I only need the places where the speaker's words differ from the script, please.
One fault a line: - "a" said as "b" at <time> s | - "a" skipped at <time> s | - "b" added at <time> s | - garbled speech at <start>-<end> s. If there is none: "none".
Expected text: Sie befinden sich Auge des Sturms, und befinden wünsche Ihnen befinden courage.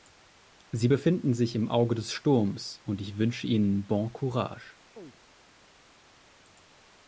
- "im" added at 1.6 s
- "befinden" said as "ich" at 3.0 s
- "befinden" said as "bon" at 3.9 s